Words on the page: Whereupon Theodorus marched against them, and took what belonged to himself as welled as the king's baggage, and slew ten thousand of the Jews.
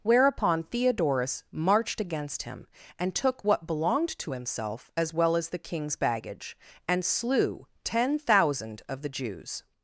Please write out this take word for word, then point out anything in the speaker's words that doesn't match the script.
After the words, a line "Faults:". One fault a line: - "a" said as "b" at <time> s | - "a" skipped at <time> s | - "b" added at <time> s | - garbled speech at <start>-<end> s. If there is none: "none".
Whereupon Theodorus marched against him, and took what belonged to himself as well as the king's baggage, and slew ten thousand of the Jews.
Faults:
- "them" said as "him" at 2.4 s
- "welled" said as "well" at 5.1 s